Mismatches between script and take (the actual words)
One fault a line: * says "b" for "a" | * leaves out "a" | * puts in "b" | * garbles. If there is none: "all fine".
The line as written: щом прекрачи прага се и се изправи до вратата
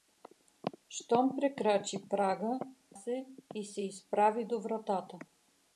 all fine